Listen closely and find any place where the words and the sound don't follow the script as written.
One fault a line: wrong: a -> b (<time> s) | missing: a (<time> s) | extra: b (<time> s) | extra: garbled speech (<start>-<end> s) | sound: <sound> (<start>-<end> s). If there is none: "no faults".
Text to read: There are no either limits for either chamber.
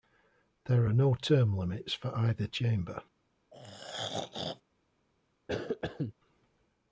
wrong: either -> term (1.1 s)
sound: throat clearing (3.5-4.6 s)
sound: cough (5.5-6.1 s)